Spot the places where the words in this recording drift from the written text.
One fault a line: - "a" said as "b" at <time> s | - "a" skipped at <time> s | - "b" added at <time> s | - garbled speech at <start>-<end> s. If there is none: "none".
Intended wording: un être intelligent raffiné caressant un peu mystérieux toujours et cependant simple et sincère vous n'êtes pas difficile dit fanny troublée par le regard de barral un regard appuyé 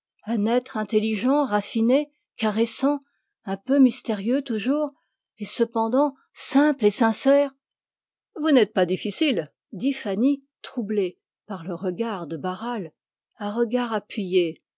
none